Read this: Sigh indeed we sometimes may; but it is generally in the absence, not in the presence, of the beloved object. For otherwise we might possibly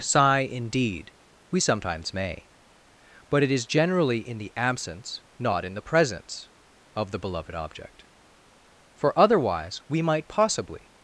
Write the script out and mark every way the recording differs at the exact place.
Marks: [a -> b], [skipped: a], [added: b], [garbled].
Sigh indeed we sometimes may; but it is generally in the absence, not in the presence, of the beloved object. For otherwise we might possibly